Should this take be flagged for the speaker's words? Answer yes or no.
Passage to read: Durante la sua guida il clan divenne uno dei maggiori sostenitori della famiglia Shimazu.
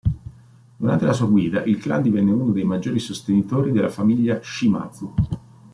no